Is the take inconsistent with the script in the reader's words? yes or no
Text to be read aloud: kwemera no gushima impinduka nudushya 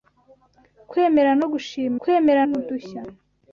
yes